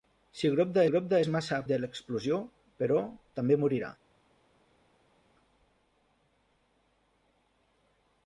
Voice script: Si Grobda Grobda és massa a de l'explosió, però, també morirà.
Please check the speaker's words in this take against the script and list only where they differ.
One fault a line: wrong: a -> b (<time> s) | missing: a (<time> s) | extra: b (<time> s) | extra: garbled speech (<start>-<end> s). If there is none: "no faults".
no faults